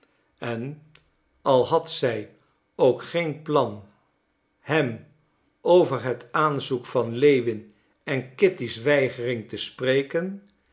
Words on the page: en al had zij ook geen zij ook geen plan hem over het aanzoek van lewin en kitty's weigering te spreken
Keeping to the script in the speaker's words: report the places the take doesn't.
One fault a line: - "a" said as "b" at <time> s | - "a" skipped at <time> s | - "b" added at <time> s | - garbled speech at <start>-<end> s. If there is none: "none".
- "zij ook geen" skipped at 3.4 s